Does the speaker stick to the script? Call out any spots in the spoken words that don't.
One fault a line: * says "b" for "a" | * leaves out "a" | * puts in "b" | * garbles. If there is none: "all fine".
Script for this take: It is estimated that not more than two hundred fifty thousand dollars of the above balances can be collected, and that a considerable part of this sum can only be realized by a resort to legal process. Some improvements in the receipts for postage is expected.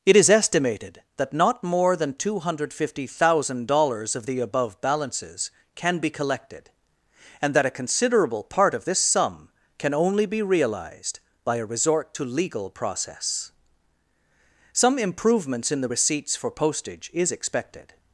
all fine